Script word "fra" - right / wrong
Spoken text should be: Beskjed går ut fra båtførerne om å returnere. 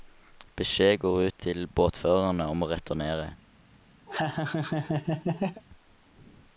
wrong